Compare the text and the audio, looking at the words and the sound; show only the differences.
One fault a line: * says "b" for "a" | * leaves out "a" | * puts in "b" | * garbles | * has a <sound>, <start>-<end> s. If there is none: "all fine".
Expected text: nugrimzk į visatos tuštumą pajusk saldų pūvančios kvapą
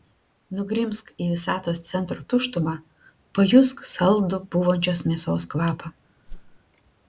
* puts in "centro"
* puts in "mėsos"
* has a whoosh, 6.3-6.6 s